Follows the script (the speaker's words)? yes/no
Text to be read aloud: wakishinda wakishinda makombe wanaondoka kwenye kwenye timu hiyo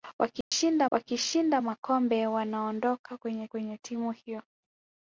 yes